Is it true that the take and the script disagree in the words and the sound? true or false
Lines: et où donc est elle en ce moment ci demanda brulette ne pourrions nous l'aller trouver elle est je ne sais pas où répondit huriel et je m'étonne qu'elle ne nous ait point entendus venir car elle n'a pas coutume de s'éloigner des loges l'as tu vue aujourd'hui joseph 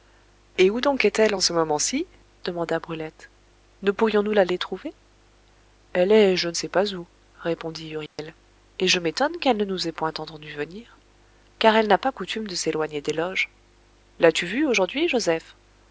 true